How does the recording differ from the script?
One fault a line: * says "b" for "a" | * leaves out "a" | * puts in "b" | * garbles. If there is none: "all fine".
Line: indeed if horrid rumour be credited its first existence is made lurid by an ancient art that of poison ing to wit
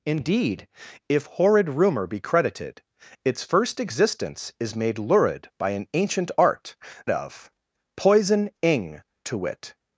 * leaves out "that"